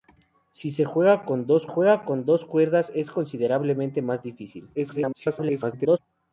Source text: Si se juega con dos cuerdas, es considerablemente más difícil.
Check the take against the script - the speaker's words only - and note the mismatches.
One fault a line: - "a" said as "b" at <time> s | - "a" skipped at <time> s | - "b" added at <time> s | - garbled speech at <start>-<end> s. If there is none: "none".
- "juega con dos" added at 1.6 s
- garbled speech at 4.7-6.0 s